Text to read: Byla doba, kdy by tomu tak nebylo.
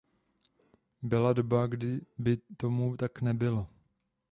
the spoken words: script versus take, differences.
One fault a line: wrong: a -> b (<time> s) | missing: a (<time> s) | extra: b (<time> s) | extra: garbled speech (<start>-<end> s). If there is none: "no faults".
no faults